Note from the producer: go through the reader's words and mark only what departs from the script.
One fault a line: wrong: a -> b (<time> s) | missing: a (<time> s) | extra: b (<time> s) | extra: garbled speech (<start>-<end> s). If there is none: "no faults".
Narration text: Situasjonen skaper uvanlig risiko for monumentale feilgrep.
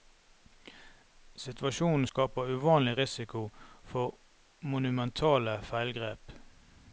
no faults